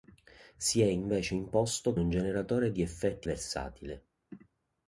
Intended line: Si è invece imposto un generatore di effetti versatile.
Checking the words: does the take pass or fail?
pass